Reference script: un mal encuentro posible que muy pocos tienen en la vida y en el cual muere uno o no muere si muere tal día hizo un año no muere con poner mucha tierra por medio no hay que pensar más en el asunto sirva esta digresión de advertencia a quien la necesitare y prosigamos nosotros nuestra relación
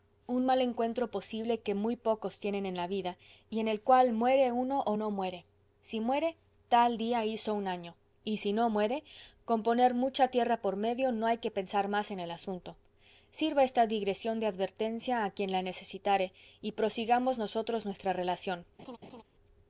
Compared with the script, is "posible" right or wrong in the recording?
right